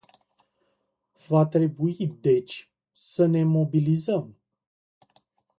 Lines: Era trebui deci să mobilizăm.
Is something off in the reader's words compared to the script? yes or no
yes